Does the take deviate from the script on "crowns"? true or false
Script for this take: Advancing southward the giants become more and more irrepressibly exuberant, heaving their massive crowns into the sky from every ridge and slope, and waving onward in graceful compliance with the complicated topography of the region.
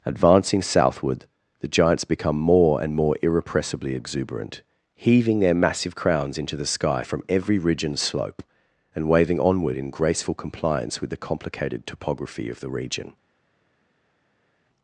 false